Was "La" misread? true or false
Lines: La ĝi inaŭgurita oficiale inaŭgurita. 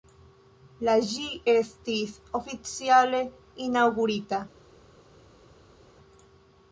false